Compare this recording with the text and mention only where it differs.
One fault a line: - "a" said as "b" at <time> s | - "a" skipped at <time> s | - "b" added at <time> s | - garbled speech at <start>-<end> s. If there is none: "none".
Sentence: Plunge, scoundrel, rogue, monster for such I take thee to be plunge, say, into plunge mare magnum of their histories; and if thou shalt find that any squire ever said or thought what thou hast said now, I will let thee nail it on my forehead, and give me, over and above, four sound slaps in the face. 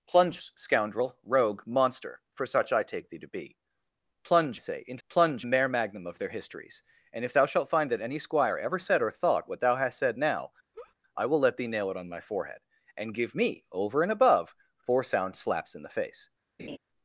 none